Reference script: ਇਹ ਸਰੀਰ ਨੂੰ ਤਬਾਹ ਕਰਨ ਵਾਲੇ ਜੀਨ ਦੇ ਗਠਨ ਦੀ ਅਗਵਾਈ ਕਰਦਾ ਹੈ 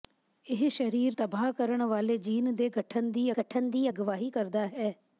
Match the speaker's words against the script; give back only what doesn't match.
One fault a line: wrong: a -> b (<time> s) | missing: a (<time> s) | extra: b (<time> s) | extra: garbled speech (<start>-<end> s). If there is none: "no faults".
missing: ਨੂੰ (1.2 s)
extra: ਗਠਨ ਦੀ (3.4 s)